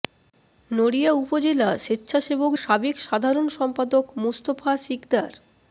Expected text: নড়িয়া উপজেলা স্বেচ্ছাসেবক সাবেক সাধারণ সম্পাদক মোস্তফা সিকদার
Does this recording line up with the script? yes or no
yes